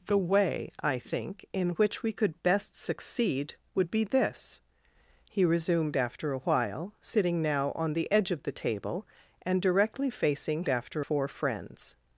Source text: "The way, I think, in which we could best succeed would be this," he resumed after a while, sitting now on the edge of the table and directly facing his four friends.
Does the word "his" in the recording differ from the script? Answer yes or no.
yes